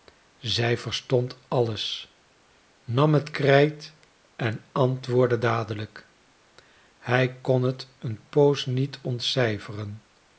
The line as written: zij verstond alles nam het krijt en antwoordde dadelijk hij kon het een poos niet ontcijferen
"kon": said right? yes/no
yes